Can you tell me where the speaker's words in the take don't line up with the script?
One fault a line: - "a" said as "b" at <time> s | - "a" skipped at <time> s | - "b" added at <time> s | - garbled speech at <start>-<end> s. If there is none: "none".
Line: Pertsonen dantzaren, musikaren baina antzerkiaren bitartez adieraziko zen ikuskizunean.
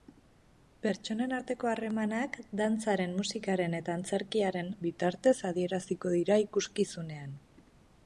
- "arteko harremanak" added at 1.4 s
- "baina" said as "eta" at 3.8 s
- "zen" said as "dira" at 6.2 s